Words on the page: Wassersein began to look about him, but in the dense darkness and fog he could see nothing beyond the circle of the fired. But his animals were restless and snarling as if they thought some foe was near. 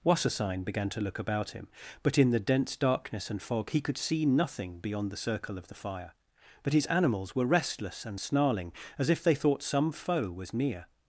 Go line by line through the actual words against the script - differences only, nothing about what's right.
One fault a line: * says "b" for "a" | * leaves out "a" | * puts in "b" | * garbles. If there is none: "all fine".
* says "fire" for "fired"